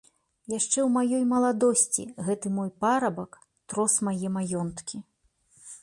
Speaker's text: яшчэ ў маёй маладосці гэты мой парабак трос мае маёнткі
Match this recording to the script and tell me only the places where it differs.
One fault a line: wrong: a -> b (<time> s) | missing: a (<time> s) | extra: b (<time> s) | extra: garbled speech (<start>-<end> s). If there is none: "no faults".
no faults